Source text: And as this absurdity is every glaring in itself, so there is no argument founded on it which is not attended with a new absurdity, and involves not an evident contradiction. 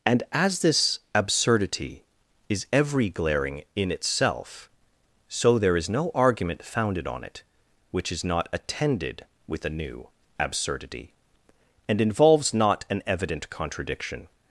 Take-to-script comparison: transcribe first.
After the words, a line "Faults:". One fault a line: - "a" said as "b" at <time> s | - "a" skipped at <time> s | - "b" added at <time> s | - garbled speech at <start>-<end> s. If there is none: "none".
And as this absurdity is every glaring in itself, so there is no argument founded on it which is not attended with a new absurdity, and involves not an evident contradiction.
Faults:
none